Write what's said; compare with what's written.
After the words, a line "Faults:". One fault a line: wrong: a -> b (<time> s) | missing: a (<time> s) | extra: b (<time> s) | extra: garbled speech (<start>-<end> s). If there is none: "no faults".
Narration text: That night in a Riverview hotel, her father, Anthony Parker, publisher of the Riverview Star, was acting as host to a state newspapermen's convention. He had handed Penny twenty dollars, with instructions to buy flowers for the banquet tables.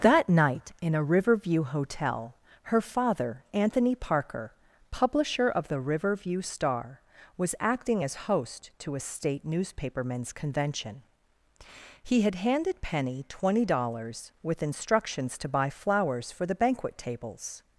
That night in a Riverview hotel, her father, Anthony Parker, publisher of the Riverview Star, was acting as host to a state newspapermen's convention. He had handed Penny twenty dollars, with instructions to buy flowers for the banquet tables.
Faults:
no faults